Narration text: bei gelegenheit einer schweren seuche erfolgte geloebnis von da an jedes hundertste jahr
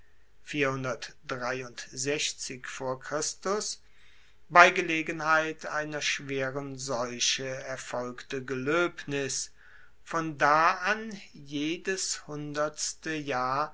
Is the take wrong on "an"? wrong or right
right